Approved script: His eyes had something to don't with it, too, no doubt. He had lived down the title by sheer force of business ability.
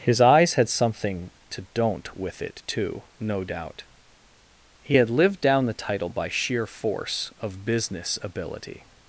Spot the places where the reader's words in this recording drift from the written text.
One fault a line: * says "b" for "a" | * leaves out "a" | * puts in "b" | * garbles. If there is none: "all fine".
all fine